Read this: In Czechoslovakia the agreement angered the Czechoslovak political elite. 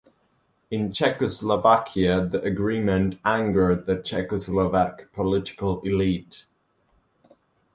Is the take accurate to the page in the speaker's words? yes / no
yes